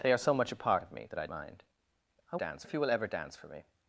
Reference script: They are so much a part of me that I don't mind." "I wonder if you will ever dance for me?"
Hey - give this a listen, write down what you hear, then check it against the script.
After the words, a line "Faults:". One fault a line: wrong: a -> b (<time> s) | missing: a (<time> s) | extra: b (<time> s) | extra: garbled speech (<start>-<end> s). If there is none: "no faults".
They are so much a part of me that I mind." "I dance if you will ever dance for me?"
Faults:
missing: don't (1.3 s)
wrong: wonder -> dance (2.3 s)